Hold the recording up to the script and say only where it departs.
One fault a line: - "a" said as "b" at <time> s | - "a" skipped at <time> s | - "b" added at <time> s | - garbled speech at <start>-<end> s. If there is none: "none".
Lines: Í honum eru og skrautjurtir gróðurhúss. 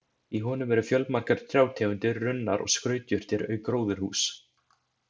- "fjölmargar trjátegundir runnar" added at 0.9 s
- "auk" added at 3.5 s